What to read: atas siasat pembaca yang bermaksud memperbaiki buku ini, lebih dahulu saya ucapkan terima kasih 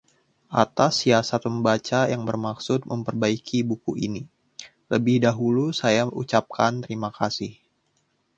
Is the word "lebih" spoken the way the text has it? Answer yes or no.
yes